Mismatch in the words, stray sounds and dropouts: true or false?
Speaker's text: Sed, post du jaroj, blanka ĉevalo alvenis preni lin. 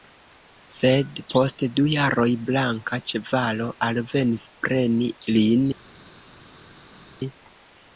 false